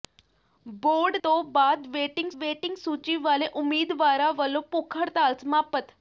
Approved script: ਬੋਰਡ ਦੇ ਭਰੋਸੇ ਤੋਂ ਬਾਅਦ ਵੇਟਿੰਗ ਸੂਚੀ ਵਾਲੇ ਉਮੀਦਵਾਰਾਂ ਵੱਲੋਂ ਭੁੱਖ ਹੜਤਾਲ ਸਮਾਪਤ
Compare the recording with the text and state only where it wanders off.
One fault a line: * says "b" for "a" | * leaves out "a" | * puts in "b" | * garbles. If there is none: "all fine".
* leaves out "ਦੇ ਭਰੋਸੇ"
* puts in "ਵੇਟਿੰਗ"